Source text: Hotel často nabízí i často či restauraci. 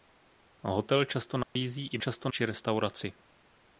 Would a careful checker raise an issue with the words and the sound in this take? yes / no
yes